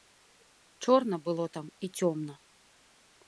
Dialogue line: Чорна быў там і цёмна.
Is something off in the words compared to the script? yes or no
yes